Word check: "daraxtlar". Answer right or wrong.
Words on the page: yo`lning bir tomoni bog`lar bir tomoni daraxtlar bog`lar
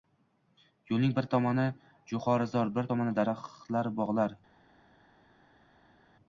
right